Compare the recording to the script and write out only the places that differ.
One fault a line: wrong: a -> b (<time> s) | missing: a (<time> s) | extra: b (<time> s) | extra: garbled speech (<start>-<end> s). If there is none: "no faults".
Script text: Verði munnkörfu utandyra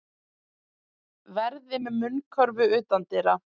extra: með (1.8 s)